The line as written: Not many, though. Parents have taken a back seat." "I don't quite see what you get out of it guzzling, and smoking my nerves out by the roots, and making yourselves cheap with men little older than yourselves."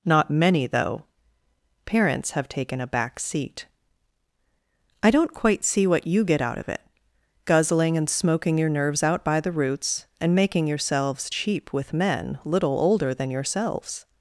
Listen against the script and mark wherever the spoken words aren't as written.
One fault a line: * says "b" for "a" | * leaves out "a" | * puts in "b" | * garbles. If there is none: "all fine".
* says "your" for "my"